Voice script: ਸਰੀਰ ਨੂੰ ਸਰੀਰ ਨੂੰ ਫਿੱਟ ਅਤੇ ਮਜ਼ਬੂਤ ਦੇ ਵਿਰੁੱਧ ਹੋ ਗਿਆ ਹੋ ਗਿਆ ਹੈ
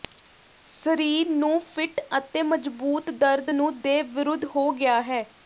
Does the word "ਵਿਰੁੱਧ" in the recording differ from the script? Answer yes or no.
no